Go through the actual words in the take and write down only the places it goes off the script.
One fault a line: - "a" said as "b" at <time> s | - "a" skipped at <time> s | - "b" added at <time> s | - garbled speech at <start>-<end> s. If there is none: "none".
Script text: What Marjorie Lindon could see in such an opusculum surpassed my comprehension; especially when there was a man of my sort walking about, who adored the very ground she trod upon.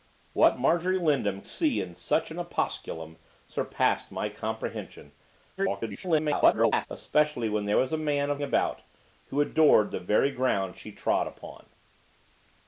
- "could" skipped at 1.4 s
- garbled speech at 5.6-6.9 s
- "my sort walking" skipped at 8.4 s